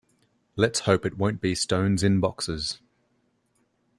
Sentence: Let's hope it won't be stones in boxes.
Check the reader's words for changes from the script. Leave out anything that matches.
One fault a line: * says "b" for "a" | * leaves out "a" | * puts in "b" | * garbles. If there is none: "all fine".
all fine